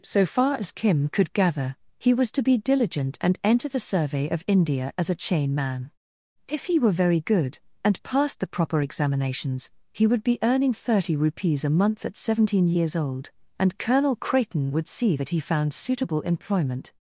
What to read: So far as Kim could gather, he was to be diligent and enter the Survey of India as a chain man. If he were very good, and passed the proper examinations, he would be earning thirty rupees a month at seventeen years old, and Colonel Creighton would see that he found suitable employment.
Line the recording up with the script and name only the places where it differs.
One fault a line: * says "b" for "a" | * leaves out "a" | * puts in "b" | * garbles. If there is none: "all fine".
all fine